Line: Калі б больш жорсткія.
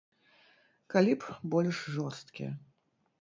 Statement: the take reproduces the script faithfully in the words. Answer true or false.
true